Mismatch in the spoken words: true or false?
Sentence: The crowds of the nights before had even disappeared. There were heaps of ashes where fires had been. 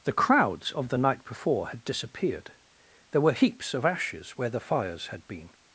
true